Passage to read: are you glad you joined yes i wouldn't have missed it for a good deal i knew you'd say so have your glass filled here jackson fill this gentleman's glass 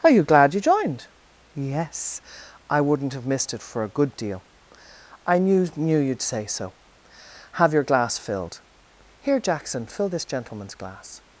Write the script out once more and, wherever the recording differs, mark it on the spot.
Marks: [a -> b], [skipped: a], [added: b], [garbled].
are you glad you joined yes i wouldn't have missed it for a good deal i knew [added: knew] you'd say so have your glass filled here jackson fill this gentleman's glass